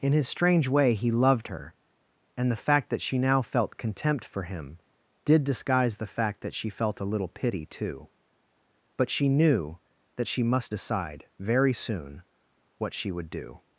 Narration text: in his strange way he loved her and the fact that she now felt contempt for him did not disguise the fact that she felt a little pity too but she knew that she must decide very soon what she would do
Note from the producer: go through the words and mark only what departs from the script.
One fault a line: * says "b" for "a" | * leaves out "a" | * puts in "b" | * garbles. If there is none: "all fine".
* leaves out "not"